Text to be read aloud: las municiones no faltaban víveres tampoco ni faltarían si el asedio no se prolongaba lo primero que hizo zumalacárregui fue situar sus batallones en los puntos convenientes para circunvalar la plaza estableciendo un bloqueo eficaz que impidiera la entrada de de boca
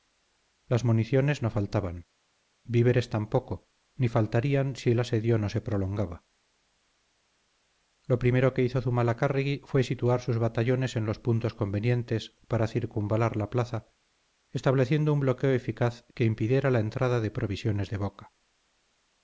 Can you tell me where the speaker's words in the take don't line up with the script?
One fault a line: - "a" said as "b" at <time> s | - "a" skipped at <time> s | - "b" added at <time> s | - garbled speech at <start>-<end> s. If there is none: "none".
- "provisiones" added at 17.3 s